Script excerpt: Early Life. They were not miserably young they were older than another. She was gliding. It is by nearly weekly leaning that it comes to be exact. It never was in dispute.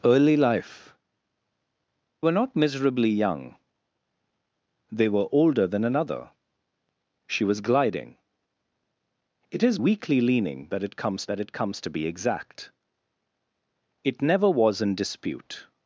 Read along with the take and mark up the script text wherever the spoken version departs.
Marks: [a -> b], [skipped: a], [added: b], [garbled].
Early Life. [skipped: They] were not miserably young they were older than another. She was gliding. It is [by nearly weekly leaning -> weekly leaning that it comes] that it comes to be exact. It never was in dispute.